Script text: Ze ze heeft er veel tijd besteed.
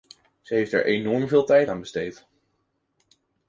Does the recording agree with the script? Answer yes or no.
no